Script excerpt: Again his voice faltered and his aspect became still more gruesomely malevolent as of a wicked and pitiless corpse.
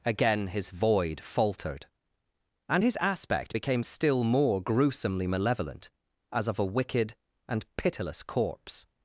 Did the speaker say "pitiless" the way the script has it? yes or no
yes